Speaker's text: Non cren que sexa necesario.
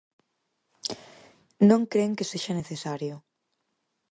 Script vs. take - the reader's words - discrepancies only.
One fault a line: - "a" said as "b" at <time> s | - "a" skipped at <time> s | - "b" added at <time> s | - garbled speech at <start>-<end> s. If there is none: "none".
none